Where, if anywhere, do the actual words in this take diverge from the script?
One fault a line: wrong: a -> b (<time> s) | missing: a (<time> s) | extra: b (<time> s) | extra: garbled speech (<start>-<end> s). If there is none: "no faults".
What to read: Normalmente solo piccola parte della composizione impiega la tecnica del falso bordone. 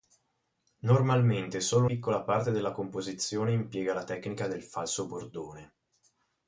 no faults